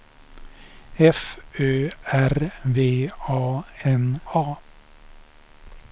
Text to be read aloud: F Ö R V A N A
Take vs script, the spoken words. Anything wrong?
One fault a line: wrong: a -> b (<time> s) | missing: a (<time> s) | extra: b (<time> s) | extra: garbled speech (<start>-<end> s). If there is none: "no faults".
no faults